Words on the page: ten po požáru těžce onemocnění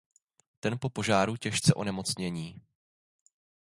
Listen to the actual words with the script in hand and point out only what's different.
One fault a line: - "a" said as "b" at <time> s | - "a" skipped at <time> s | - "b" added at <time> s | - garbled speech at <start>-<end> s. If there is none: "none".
none